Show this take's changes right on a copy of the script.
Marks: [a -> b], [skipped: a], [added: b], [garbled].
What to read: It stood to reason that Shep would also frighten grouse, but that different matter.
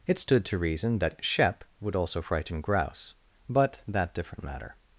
It stood to reason that Shep would also frighten grouse, but that different matter.